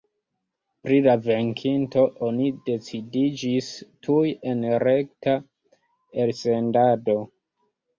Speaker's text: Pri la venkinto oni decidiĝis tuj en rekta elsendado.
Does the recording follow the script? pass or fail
pass